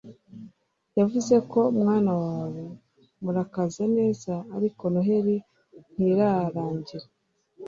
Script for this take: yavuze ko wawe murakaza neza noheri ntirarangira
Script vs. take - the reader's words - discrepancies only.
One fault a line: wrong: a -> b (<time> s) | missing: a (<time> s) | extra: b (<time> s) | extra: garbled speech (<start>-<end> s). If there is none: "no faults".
extra: mwana (1.8 s)
extra: ariko (4.6 s)